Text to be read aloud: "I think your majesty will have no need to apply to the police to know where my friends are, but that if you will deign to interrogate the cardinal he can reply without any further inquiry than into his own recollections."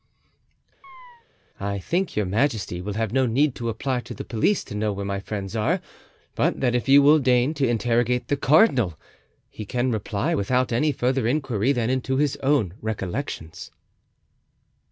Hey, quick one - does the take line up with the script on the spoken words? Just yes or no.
yes